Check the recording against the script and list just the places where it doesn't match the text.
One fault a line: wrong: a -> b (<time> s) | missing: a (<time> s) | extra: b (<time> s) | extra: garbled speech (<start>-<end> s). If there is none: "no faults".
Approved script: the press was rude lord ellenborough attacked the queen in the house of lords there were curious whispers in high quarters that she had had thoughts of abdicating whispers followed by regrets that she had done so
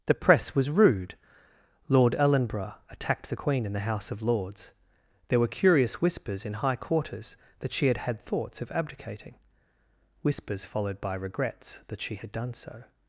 no faults